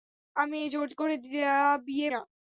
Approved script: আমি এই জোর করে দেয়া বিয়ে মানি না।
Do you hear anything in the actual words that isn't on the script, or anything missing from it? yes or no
yes